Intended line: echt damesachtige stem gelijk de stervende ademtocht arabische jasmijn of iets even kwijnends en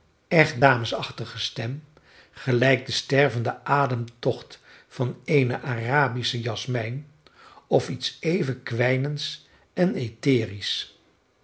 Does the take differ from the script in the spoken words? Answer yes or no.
yes